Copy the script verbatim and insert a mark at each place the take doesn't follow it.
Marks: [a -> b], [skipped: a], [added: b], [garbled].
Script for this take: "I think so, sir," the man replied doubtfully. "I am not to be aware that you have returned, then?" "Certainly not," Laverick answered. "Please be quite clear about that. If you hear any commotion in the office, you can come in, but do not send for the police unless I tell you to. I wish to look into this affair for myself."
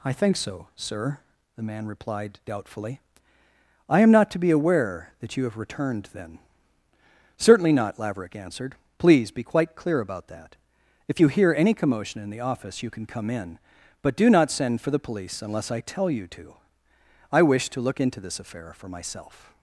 "I think so, sir," the man replied doubtfully. "I am not to be aware that you have returned, then?" "Certainly not," Laverick answered. "Please be quite clear about that. If you hear any commotion in the office, you can come in, but do not send for the police unless I tell you to. I wish to look into this affair for myself."